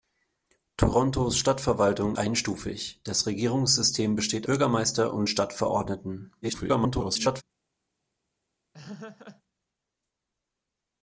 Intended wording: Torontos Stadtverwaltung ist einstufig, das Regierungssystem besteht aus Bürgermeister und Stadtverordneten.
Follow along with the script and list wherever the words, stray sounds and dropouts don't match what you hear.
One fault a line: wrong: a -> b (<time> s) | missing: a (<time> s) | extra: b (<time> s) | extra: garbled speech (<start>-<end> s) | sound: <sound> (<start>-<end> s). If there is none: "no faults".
missing: ist (2.2 s)
missing: aus (4.5 s)
extra: garbled speech (6.4-7.4 s)
sound: laugh (8.7-9.4 s)